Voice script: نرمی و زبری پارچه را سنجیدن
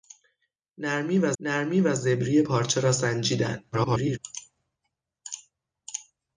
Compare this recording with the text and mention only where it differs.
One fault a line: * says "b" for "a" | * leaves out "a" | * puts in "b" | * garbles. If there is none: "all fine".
* puts in "نرمی و"
* garbles